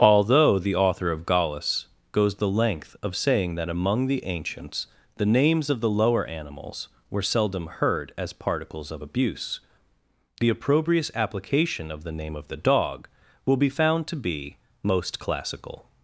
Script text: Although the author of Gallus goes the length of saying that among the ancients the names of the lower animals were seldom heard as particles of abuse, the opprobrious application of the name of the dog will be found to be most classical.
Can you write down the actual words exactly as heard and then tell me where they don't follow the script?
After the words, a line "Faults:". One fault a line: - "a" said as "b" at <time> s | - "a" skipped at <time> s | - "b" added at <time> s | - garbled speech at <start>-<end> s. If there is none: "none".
Although the author of Gallus goes the length of saying that among the ancients the names of the lower animals were seldom heard as particles of abuse, the opprobrious application of the name of the dog will be found to be most classical.
Faults:
none